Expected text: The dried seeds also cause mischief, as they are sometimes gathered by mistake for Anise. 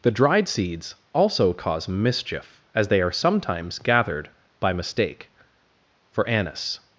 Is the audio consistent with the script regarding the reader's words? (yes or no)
yes